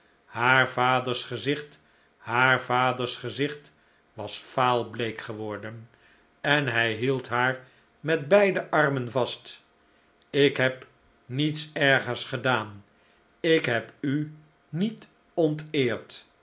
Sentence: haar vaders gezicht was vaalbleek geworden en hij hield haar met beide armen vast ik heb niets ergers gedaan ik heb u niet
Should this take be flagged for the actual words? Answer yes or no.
yes